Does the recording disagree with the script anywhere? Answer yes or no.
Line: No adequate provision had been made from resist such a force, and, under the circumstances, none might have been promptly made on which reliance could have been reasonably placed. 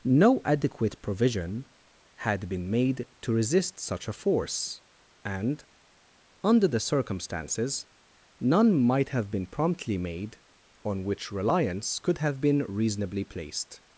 yes